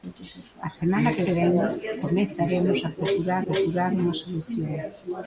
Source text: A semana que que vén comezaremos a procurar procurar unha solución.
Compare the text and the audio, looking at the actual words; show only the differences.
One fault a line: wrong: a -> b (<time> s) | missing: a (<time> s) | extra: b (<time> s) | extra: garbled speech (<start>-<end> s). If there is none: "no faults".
no faults